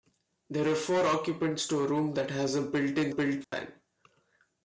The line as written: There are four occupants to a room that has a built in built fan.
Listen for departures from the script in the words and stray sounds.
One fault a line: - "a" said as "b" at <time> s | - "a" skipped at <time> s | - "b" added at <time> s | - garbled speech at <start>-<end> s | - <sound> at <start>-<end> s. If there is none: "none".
- dropout at 3.4-3.5 s